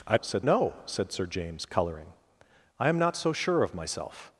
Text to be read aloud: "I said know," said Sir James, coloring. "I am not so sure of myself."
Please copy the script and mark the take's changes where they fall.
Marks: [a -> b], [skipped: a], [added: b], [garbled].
"I said know," said Sir James, coloring. "I am not so sure of myself."